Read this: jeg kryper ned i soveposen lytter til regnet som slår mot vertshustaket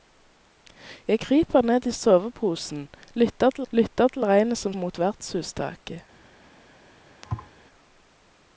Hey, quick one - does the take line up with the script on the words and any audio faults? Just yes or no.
no